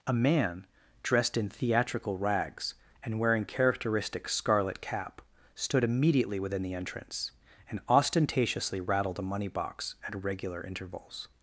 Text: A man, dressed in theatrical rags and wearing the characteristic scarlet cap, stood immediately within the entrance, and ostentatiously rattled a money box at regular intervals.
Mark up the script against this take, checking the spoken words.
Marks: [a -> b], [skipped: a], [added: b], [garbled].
A man, dressed in theatrical rags and wearing [skipped: the] characteristic scarlet cap, stood immediately within the entrance, and ostentatiously rattled a money box at regular intervals.